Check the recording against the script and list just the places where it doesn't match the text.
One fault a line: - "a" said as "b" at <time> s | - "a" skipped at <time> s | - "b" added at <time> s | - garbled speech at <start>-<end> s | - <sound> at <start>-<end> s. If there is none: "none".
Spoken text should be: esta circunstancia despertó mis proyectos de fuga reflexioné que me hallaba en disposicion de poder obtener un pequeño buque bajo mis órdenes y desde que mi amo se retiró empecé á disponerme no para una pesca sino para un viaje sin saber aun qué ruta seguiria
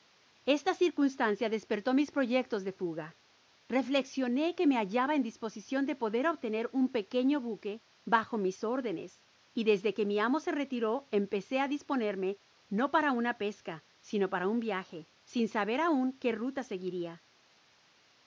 none